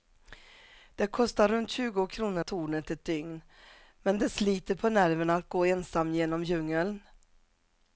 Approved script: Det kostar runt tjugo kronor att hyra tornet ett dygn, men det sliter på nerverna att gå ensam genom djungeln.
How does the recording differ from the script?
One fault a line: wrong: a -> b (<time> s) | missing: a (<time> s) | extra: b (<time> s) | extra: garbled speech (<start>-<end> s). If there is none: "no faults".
missing: att hyra (2.5 s)